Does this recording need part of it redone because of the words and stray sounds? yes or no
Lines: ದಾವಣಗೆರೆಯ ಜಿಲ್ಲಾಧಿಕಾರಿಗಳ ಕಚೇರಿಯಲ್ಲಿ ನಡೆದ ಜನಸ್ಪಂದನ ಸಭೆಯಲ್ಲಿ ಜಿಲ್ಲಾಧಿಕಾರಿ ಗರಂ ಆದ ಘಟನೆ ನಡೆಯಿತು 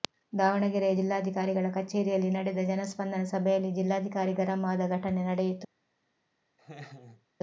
yes